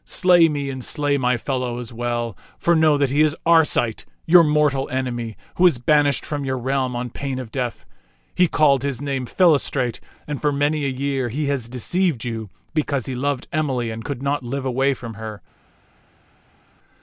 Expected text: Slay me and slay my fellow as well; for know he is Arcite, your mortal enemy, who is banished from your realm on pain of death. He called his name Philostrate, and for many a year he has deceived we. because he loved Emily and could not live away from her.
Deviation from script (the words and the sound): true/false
true